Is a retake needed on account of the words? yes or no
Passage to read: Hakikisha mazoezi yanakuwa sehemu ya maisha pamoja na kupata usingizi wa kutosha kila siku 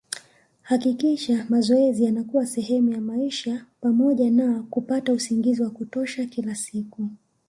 no